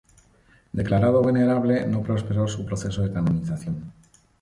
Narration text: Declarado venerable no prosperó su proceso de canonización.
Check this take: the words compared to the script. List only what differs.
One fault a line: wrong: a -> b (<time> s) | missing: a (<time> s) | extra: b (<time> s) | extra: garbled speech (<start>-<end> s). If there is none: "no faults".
no faults